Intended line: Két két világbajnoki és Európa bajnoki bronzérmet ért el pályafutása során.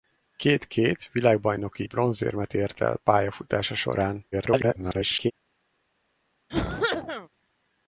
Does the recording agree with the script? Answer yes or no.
no